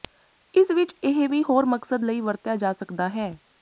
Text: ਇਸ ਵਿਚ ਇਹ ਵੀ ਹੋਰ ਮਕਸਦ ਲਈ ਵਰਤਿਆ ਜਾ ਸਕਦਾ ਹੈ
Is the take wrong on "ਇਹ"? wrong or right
right